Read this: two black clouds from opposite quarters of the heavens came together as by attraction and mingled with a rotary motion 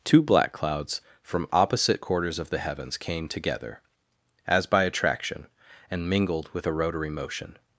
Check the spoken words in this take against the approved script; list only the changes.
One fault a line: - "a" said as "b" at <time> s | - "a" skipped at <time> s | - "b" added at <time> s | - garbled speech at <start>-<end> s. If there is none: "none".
none